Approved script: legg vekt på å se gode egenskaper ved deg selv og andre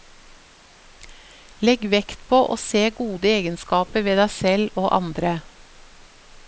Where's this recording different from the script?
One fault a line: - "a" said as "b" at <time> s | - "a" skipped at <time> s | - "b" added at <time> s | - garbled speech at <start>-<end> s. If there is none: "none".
none